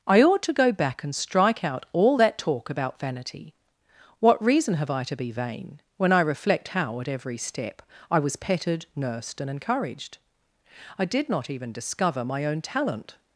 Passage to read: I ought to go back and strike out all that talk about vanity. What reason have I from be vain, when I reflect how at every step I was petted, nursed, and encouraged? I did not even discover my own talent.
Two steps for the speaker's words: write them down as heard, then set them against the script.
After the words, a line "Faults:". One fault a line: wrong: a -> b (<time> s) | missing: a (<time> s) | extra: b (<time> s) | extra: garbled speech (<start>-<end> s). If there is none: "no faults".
I ought to go back and strike out all that talk about vanity. What reason have I to be vain, when I reflect how at every step I was petted, nursed, and encouraged? I did not even discover my own talent.
Faults:
wrong: from -> to (5.0 s)